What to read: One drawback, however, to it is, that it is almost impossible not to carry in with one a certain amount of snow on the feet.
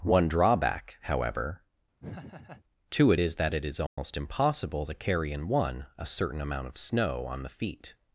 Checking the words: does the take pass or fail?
fail